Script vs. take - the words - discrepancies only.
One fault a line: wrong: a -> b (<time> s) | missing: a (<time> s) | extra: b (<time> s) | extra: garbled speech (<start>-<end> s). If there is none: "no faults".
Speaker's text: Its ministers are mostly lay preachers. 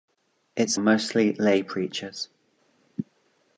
missing: ministers are (0.8 s)